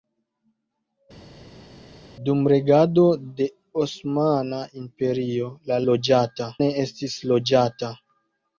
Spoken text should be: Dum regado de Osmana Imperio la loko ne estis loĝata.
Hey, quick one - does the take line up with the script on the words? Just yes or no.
no